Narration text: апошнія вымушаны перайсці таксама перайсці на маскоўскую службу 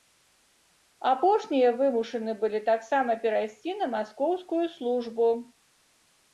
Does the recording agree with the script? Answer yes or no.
no